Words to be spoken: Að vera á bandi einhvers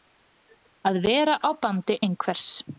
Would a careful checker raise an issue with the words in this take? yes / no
no